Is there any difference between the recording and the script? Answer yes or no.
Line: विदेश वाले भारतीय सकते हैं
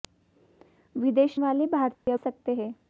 no